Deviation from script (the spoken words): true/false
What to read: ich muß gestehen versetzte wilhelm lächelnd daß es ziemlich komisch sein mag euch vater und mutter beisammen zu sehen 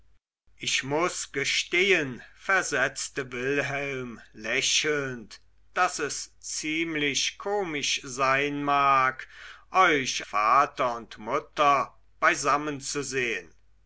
false